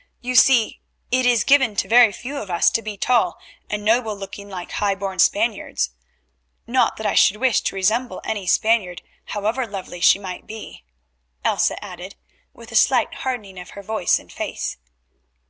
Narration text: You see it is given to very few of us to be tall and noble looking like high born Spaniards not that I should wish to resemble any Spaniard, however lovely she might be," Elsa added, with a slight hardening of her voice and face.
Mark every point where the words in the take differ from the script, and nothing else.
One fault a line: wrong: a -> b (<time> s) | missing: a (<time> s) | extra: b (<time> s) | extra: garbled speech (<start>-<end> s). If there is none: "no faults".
no faults